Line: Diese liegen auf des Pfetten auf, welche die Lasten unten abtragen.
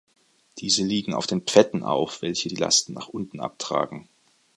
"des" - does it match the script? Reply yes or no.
no